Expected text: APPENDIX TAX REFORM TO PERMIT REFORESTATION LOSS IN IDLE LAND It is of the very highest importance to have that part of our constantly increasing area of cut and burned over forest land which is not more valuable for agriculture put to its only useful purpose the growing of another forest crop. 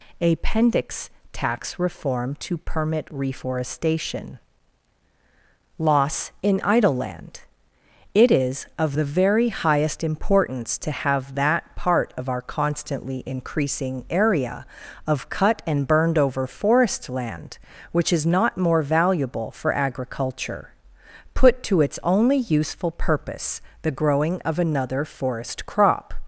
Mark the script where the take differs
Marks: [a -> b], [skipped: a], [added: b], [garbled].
APPENDIX TAX REFORM TO PERMIT REFORESTATION LOSS IN IDLE LAND It is of the very highest importance to have that part of our constantly increasing area of cut and burned over forest land which is not more valuable for agriculture put to its only useful purpose the growing of another forest crop.